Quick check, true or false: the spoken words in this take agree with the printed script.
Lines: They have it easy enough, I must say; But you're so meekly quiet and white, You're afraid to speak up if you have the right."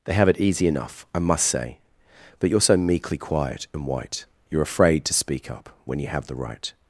false